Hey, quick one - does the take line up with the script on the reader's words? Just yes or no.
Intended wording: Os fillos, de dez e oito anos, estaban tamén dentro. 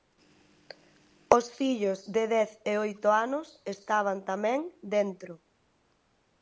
yes